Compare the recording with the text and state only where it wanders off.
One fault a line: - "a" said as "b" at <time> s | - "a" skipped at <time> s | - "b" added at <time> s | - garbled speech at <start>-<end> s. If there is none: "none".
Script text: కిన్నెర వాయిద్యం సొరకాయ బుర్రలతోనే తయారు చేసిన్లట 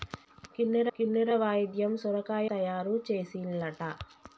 - "కిన్నెర" added at 1.0 s
- "బుర్రలతోనే" skipped at 2.5 s